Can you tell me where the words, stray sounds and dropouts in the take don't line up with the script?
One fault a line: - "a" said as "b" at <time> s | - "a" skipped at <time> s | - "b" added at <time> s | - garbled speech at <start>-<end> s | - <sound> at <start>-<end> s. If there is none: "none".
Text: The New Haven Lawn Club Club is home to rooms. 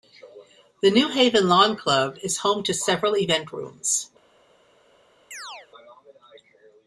- "Club" skipped at 2.2 s
- "several event" added at 2.7 s
- chirp at 5.3-5.7 s